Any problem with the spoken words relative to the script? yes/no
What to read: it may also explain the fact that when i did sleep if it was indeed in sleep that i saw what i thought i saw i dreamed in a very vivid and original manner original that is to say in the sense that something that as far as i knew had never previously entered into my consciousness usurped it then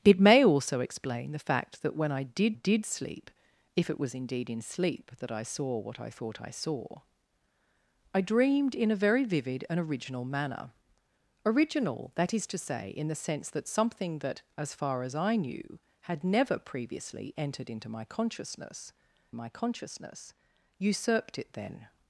yes